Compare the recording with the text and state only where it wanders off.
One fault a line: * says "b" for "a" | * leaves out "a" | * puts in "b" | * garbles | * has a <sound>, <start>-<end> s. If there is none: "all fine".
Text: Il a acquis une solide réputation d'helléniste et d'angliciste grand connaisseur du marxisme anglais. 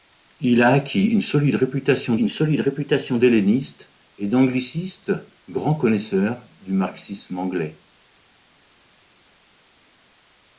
* puts in "une solide réputation"